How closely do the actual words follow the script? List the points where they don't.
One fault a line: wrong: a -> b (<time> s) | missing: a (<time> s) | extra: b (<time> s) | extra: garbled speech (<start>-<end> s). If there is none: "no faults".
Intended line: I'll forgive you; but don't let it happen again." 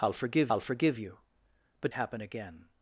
extra: I'll forgive (0.5 s)
missing: don't let it (1.9 s)